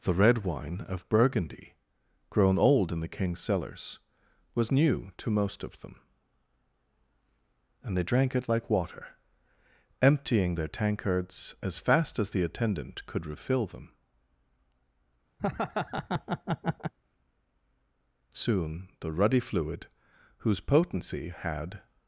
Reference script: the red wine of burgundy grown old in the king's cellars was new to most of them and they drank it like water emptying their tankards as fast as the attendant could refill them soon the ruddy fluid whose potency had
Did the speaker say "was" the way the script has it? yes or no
yes